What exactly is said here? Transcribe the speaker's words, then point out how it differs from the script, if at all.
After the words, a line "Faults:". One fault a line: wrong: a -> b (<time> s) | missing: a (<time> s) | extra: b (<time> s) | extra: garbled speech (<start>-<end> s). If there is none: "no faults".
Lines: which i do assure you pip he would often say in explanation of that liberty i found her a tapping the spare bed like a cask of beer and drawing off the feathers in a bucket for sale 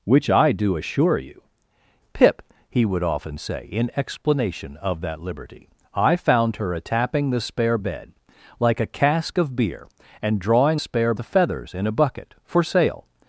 which i do assure you pip he would often say in explanation of that liberty i found her a tapping the spare bed like a cask of beer and drawing spare the feathers in a bucket for sale
Faults:
wrong: off -> spare (10.8 s)